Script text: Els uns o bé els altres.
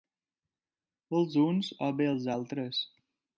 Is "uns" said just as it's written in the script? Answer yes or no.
yes